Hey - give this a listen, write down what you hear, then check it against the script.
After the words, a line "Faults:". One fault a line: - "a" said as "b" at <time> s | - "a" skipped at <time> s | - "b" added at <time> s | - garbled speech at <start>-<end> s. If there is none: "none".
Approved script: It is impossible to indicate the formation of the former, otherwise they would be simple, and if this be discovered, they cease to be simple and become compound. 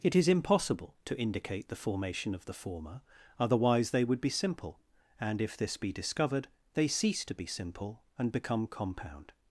It is impossible to indicate the formation of the former, otherwise they would be simple, and if this be discovered, they cease to be simple and become compound.
Faults:
none